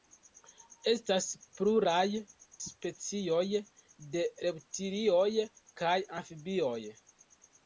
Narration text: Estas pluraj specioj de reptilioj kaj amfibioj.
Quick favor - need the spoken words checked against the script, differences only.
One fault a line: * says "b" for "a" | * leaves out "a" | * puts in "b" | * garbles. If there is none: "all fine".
all fine